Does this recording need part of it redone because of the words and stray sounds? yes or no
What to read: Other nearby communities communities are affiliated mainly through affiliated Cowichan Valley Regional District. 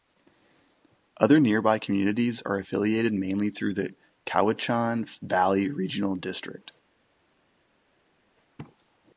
yes